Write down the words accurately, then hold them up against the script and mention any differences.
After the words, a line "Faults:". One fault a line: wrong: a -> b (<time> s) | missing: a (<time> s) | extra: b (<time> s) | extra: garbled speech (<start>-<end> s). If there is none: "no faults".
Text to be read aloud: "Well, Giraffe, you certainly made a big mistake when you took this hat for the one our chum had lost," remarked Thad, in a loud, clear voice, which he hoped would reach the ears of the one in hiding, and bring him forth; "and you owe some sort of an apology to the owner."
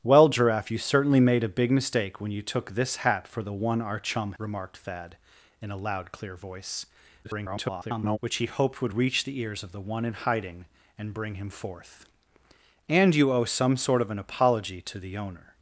"Well, Giraffe, you certainly made a big mistake when you took this hat for the one our chum," remarked Thad, in a loud, clear voice, [garbled] which he hoped would reach the ears of the one in hiding, and bring him forth; "and you owe some sort of an apology to the owner."
Faults:
missing: had lost (4.3 s)
extra: garbled speech (7.2-8.2 s)